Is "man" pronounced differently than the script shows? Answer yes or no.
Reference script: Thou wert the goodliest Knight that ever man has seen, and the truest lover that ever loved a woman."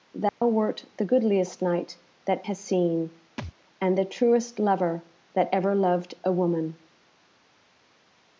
yes